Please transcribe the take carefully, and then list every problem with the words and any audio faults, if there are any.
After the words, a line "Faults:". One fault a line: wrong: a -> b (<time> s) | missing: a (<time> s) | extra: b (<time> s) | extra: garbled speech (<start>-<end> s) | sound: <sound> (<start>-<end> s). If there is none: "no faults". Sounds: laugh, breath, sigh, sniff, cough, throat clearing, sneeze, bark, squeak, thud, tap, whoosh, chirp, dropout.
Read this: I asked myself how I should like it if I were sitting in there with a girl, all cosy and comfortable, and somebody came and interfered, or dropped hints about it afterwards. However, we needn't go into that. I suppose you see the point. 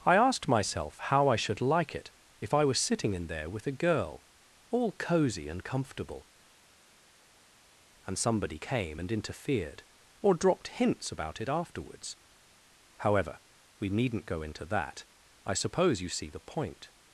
I asked myself how I should like it if I was sitting in there with a girl, all cosy and comfortable, and somebody came and interfered, or dropped hints about it afterwards. However, we needn't go into that. I suppose you see the point.
Faults:
wrong: were -> was (2.6 s)